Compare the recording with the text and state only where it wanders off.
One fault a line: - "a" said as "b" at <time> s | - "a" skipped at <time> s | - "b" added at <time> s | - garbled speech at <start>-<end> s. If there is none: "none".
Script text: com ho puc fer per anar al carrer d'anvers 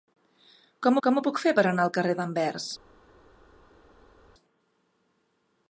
- "com" added at 1.1 s